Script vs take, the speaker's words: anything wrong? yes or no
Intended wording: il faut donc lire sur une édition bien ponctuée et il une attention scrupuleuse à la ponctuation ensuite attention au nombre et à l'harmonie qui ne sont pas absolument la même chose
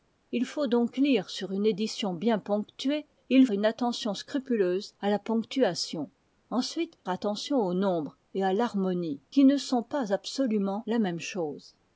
no